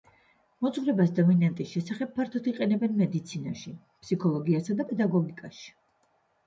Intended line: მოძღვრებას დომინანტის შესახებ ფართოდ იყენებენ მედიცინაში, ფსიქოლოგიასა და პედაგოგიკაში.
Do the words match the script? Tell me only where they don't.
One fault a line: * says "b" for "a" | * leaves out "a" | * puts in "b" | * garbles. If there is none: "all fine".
all fine